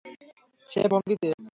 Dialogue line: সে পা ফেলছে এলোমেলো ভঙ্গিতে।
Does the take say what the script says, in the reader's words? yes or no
no